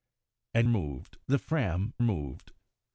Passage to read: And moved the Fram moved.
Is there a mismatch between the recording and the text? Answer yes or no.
no